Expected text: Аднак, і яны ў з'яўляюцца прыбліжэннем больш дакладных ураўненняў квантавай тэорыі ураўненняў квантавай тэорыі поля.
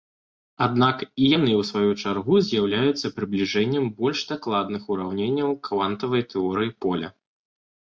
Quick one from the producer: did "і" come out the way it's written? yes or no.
yes